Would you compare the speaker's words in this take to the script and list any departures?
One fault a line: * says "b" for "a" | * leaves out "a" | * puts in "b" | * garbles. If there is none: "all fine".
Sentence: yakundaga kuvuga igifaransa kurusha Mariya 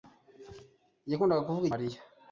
* leaves out "igifaransa kurusha"